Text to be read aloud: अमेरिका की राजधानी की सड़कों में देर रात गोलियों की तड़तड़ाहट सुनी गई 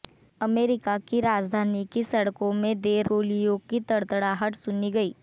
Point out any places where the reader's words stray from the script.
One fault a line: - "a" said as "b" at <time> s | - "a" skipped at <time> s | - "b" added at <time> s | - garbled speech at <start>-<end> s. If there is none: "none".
- "रात" skipped at 3.1 s